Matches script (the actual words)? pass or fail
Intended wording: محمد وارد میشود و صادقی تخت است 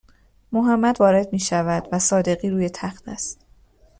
fail